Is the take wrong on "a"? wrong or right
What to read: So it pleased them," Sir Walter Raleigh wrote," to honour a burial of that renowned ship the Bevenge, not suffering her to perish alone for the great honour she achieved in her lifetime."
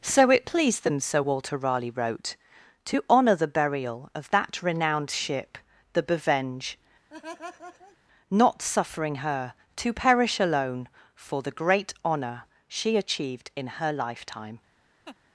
wrong